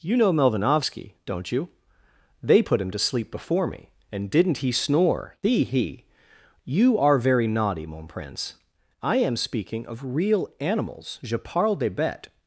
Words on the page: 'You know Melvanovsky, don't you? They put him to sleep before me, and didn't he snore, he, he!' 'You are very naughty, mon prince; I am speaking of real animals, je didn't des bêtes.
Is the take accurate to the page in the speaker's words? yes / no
no